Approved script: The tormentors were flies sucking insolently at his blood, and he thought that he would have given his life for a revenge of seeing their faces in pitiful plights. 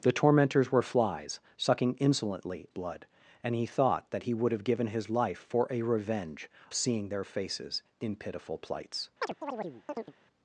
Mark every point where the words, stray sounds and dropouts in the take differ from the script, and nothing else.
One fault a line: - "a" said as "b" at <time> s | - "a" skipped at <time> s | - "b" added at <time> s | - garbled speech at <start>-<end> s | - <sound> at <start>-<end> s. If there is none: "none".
- "at his" skipped at 2.7 s
- "of" skipped at 6.5 s
- chirp at 9.2-10.1 s